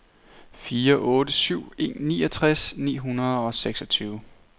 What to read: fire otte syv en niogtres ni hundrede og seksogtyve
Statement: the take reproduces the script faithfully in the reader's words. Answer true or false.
true